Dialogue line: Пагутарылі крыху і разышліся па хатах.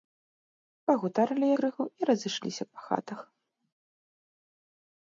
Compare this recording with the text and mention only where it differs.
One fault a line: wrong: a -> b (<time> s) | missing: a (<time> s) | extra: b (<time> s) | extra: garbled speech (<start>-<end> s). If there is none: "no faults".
no faults